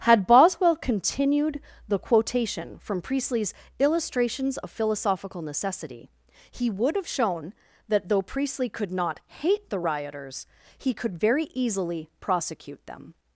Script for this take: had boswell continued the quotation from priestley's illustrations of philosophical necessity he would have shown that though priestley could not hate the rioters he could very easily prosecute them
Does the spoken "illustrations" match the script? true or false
true